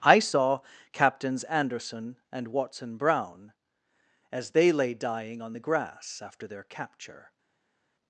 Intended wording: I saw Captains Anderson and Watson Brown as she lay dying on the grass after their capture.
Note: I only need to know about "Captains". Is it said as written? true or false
true